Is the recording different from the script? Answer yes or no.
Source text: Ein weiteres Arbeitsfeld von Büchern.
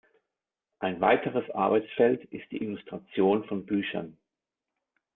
yes